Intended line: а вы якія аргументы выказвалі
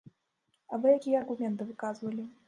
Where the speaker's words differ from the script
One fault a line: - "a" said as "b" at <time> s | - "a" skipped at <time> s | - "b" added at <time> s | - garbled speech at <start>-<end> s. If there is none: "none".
none